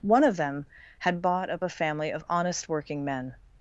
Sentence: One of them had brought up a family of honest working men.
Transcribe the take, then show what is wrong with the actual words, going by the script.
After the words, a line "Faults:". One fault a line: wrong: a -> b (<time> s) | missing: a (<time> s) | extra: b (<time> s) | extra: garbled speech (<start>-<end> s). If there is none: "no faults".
One of them had bought up a family of honest working men.
Faults:
wrong: brought -> bought (1.2 s)